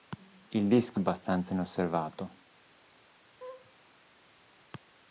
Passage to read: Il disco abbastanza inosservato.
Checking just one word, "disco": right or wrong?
right